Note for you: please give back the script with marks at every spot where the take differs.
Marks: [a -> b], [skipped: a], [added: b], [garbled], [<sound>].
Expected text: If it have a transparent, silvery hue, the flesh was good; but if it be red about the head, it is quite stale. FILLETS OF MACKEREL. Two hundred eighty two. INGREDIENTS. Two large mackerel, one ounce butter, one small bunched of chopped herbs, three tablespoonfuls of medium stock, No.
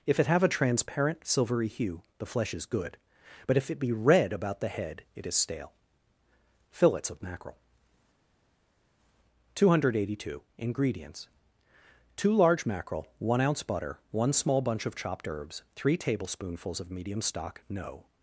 If it have a transparent, silvery hue, the flesh [was -> is] good; but if it be red about the head, it is [skipped: quite] stale. FILLETS OF MACKEREL. Two hundred eighty two. INGREDIENTS. Two large mackerel, one ounce butter, one small [bunched -> bunch] of chopped herbs, three tablespoonfuls of medium stock, No.